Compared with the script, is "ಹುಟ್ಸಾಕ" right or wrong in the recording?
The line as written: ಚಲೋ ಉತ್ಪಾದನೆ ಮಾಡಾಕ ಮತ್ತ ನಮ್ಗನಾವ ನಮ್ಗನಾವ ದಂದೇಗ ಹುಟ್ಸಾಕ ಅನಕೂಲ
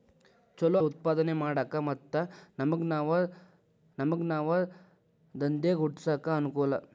right